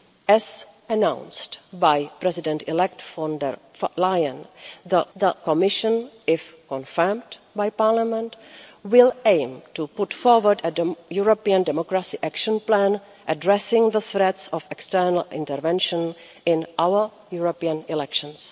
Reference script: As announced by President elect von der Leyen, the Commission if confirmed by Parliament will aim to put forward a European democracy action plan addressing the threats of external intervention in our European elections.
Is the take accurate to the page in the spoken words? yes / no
no